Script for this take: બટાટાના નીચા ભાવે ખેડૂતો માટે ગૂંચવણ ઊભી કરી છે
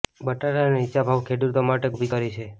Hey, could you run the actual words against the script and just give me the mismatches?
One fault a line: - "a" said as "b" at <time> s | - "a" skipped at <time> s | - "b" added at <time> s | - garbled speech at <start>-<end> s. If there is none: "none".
- "ગૂંચવણ" skipped at 1.9 s